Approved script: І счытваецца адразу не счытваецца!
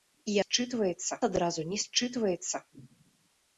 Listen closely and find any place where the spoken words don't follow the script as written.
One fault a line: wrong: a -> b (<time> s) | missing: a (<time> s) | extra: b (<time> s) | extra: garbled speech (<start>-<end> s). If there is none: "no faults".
no faults